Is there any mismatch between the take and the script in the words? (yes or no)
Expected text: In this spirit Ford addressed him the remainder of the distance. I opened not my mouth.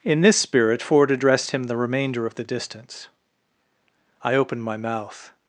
yes